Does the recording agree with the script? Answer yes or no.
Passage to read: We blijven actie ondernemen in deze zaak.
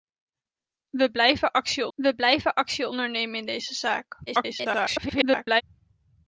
no